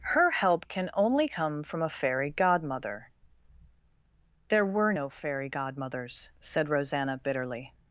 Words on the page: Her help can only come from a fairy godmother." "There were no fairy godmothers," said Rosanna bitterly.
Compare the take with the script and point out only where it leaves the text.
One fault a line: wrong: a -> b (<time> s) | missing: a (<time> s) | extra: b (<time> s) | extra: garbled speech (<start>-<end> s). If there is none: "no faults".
no faults